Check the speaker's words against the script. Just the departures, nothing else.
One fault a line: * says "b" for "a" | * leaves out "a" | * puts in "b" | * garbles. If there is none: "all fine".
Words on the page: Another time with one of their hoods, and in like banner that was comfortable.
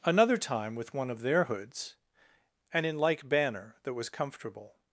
all fine